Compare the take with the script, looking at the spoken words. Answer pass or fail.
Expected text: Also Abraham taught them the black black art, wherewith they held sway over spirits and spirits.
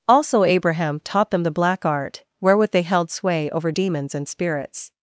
fail